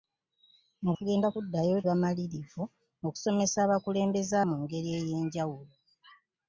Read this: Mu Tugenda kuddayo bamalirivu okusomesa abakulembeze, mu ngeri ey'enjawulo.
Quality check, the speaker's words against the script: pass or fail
pass